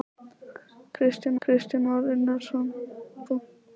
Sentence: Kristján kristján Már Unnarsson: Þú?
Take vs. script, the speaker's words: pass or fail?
pass